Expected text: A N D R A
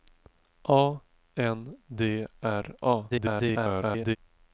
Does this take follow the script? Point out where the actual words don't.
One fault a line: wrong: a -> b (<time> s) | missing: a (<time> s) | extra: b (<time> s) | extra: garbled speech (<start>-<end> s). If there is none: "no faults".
extra: garbled speech (3.1-4.2 s)